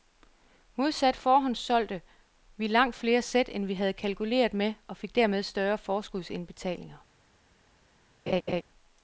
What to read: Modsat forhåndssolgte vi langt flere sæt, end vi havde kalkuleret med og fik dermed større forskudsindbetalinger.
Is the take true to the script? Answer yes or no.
yes